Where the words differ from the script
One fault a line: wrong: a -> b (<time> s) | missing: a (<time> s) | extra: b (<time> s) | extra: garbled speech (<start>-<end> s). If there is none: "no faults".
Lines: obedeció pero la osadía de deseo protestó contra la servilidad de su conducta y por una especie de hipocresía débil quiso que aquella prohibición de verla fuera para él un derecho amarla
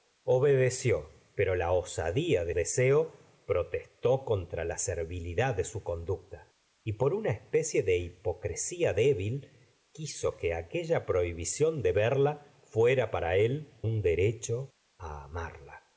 no faults